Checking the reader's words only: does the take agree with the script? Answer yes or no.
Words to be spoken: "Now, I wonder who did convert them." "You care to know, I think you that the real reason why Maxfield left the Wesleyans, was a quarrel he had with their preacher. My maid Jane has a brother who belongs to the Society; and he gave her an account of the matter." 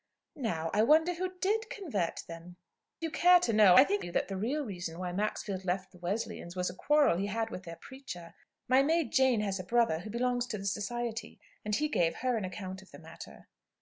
yes